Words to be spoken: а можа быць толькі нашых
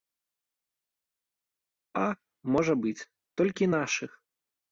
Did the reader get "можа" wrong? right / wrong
right